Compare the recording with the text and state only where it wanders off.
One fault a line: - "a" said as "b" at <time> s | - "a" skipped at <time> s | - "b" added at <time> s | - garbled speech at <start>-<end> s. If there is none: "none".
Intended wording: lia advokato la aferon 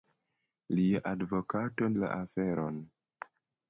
none